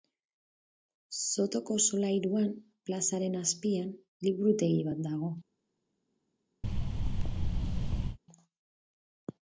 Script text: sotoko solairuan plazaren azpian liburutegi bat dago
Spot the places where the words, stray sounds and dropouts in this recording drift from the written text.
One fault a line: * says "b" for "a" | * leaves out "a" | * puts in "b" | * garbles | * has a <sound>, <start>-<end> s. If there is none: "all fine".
* has a thud, 6.6-8.2 s